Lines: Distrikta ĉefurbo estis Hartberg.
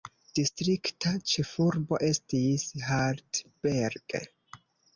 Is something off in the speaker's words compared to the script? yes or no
no